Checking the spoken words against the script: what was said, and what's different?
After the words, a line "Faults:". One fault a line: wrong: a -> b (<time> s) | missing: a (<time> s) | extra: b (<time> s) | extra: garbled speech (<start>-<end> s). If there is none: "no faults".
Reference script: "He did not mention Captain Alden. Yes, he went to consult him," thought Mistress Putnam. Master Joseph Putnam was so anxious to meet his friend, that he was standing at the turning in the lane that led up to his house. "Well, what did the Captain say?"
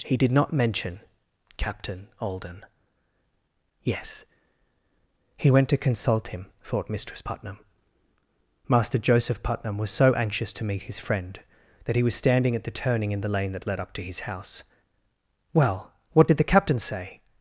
"He did not mention Captain Alden. Yes, he went to consult him," thought Mistress Putnam. Master Joseph Putnam was so anxious to meet his friend, that he was standing at the turning in the lane that led up to his house. "Well, what did the Captain say?"
Faults:
no faults